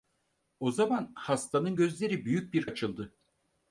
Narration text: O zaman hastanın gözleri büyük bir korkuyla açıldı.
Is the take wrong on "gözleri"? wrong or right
right